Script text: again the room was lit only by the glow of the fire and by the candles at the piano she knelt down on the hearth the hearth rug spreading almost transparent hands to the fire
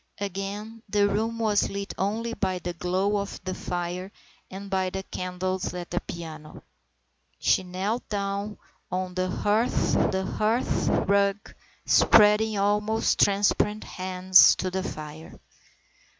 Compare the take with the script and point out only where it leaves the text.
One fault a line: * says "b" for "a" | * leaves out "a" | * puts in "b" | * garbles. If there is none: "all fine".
all fine